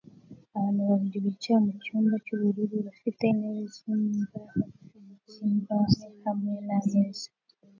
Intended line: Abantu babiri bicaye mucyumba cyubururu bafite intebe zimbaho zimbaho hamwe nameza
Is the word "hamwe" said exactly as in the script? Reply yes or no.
yes